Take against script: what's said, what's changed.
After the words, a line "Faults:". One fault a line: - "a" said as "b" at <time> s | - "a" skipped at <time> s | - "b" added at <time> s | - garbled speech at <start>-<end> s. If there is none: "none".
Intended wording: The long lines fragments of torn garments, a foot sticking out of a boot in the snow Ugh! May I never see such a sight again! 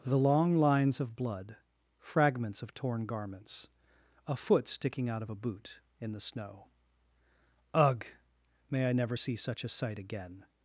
The long lines of blood, fragments of torn garments, a foot sticking out of a boot in the snow Ugh! May I never see such a sight again!
Faults:
- "of blood" added at 1.0 s